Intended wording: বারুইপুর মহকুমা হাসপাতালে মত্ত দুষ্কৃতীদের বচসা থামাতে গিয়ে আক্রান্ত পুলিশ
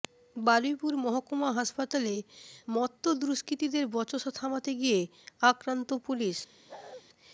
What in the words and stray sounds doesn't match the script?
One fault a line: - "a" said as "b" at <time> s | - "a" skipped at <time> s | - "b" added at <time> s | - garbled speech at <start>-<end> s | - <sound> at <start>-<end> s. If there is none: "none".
- bark at 6.7-7.0 s